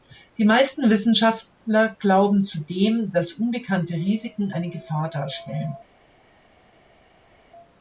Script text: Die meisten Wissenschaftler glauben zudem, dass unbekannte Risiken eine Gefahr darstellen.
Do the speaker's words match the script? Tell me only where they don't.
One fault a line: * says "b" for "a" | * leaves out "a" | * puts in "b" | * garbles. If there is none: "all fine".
all fine